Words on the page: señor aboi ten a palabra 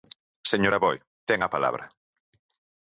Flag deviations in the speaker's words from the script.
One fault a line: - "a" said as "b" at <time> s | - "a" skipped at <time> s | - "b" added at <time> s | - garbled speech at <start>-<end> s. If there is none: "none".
none